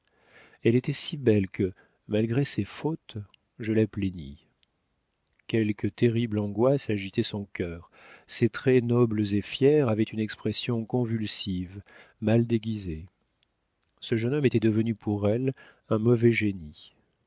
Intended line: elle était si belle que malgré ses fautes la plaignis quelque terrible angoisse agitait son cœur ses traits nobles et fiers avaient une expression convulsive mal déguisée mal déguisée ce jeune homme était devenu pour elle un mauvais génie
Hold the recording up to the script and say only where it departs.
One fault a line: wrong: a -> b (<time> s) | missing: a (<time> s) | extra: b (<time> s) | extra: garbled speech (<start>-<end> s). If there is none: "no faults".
extra: je (3.6 s)
missing: mal déguisée (13.1 s)